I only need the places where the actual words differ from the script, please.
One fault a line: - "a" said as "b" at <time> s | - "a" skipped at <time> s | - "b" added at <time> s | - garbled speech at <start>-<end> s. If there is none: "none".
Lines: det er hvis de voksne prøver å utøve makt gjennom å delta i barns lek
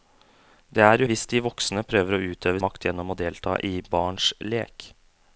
none